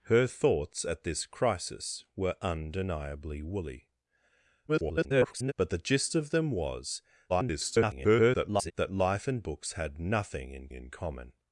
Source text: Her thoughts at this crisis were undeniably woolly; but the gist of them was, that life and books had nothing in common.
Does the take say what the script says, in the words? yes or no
no